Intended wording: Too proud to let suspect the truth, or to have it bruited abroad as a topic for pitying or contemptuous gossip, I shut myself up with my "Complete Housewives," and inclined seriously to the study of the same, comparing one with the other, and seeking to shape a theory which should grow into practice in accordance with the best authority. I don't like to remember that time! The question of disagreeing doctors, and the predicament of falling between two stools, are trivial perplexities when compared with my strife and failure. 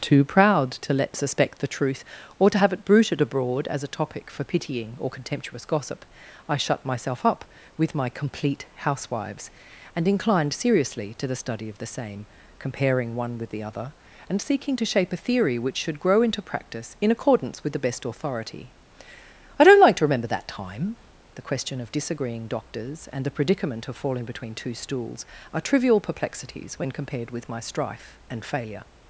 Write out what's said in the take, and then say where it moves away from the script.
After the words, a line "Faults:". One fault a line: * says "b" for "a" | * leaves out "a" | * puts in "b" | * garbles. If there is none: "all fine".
Too proud to let suspect the truth, or to have it bruited abroad as a topic for pitying or contemptuous gossip, I shut myself up with my "Complete Housewives," and inclined seriously to the study of the same, comparing one with the other, and seeking to shape a theory which should grow into practice in accordance with the best authority. I don't like to remember that time! The question of disagreeing doctors, and the predicament of falling between two stools, are trivial perplexities when compared with my strife and failure.
Faults:
all fine